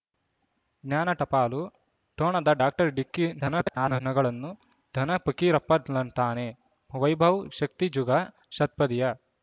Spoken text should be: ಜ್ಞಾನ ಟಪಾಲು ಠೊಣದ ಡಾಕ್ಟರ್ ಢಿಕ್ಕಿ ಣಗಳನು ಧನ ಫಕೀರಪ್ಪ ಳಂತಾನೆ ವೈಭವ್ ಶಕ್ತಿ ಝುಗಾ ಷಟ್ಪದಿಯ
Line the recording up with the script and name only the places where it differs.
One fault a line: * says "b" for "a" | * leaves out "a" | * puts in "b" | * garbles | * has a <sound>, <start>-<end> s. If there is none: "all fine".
* garbles